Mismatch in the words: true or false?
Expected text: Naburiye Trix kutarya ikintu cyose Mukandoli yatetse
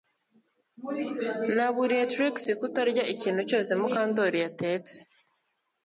false